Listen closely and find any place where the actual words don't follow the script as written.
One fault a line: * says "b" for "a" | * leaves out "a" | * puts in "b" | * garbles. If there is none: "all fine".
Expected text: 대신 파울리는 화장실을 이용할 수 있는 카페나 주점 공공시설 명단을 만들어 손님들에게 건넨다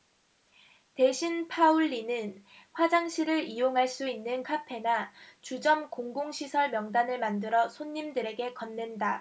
all fine